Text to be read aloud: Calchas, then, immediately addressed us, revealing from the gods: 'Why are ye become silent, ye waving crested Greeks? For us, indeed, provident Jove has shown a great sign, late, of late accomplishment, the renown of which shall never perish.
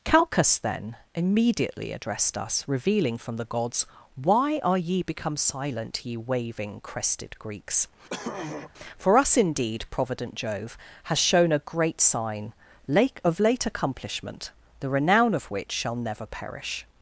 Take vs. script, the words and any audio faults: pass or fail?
fail